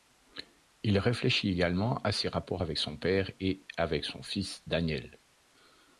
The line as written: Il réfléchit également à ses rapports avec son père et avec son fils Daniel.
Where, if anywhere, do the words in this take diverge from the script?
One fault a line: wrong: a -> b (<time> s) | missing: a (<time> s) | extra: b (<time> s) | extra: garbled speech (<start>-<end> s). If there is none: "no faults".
no faults